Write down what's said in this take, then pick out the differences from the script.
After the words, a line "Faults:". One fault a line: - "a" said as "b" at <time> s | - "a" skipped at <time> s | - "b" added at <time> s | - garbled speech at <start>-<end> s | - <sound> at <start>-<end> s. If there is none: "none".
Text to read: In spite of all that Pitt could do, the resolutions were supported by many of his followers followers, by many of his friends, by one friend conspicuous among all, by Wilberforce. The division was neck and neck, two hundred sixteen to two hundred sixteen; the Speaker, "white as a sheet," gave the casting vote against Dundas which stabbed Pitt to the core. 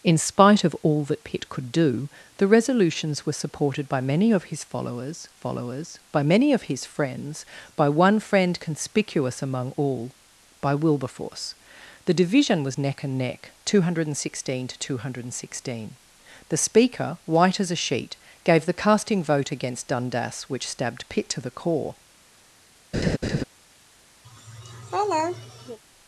In spite of all that Pitt could do, the resolutions were supported by many of his followers followers, by many of his friends, by one friend conspicuous among all, by Wilberforce. The division was neck and neck, two hundred sixteen to two hundred sixteen; the Speaker, "white as a sheet," gave the casting vote against Dundas which stabbed Pitt to the core.
Faults:
- laugh at 22.9-23.4 s
- laugh at 24.2-25.8 s